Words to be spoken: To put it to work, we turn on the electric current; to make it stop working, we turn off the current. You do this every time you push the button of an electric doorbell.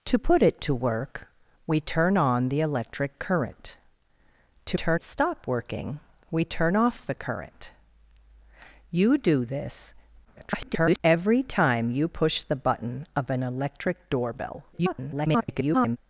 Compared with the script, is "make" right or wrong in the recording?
wrong